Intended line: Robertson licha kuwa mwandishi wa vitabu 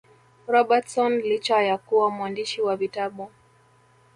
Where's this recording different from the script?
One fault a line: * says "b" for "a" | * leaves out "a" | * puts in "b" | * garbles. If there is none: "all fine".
* puts in "ya"